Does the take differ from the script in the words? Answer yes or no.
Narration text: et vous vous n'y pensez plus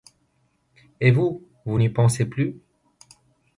no